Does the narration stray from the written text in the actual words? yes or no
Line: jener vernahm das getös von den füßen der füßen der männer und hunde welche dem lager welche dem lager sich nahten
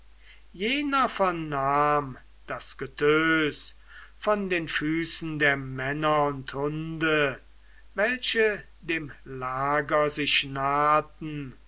yes